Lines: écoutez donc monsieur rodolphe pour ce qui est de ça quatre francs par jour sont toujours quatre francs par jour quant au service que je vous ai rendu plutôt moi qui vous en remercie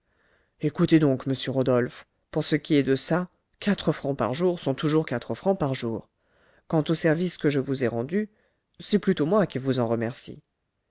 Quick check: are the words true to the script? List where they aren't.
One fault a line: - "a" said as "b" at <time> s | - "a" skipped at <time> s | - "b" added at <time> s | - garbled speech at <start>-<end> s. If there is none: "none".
- "c'est" added at 8.8 s